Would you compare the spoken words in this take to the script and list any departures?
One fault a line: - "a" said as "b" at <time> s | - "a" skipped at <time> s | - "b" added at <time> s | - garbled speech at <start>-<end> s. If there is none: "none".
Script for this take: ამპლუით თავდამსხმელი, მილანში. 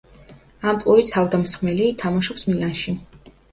- "თამაშობს" added at 2.0 s